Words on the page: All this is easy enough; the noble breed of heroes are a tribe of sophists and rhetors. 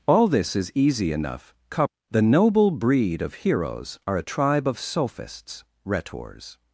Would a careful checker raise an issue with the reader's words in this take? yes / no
yes